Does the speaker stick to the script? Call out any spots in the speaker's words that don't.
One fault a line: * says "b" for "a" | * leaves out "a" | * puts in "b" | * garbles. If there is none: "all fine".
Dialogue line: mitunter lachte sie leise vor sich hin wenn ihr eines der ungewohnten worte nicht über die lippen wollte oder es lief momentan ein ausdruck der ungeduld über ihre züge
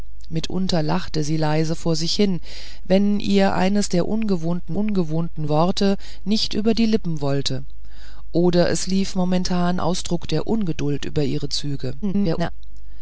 * puts in "ungewohnten"
* leaves out "ein"
* garbles